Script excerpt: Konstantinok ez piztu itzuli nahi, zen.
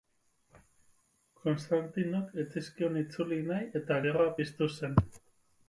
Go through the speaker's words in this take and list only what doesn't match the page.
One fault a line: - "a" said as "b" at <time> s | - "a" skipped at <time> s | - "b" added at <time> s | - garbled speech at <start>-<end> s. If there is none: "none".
- "piztu" said as "zizkion" at 2.6 s
- "eta gerra piztu" added at 3.8 s